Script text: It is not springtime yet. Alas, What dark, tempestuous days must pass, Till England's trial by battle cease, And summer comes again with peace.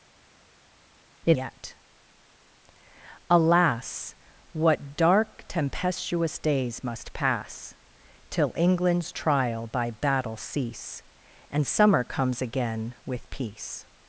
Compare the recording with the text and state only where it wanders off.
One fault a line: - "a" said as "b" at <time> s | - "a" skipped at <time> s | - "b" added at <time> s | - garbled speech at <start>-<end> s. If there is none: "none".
- "is not springtime" skipped at 1.4 s